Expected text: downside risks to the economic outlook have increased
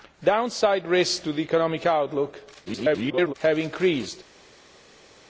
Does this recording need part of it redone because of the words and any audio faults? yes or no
yes